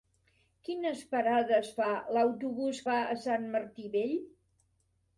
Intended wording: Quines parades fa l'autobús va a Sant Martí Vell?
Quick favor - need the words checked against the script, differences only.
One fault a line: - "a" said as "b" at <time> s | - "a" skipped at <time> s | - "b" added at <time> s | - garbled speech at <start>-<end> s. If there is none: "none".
none